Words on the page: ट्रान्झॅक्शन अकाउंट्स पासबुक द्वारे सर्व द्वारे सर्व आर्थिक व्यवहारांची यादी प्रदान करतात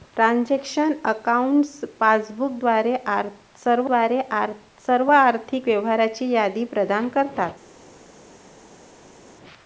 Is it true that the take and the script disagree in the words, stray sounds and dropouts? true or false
false